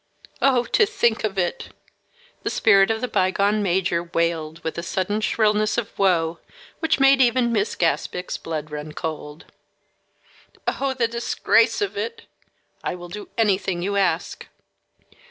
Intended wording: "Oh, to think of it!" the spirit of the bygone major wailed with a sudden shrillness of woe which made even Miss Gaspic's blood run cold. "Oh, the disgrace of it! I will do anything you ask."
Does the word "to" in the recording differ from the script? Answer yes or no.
no